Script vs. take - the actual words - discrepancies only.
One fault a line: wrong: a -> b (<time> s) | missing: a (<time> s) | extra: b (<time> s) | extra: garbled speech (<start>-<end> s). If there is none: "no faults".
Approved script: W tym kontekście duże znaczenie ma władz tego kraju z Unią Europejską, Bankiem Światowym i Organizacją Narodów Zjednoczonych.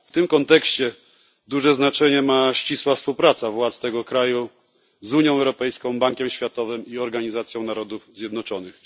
extra: ścisła współpraca (2.5 s)